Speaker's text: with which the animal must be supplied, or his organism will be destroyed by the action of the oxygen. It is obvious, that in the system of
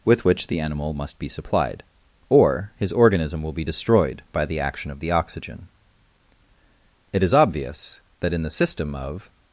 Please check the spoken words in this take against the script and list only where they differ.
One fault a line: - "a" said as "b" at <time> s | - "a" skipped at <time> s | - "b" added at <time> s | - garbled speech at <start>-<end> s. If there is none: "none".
none